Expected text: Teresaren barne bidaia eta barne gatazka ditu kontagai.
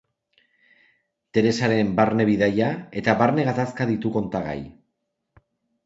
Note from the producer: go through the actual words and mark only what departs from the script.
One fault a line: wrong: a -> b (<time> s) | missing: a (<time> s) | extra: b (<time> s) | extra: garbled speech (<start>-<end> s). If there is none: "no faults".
no faults